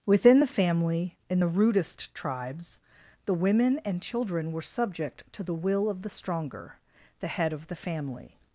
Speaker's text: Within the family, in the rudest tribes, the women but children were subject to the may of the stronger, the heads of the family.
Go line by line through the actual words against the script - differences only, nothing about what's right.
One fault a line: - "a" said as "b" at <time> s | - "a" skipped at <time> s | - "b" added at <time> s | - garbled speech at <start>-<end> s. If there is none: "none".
- "but" said as "and" at 3.8 s
- "may" said as "will" at 5.5 s
- "heads" said as "head" at 7.3 s